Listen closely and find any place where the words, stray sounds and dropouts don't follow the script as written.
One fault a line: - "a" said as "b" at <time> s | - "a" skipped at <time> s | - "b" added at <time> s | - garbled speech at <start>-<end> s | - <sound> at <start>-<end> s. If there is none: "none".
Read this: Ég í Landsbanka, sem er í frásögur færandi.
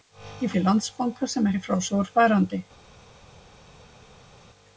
none